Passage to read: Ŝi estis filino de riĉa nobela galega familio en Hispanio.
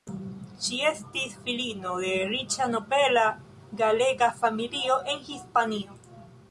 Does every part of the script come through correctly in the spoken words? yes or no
yes